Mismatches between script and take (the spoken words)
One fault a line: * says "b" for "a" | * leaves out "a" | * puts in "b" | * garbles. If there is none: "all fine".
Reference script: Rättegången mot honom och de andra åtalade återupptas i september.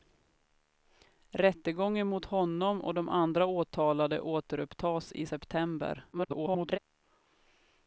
* garbles